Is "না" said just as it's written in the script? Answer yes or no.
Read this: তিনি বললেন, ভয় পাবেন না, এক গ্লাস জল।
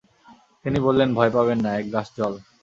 yes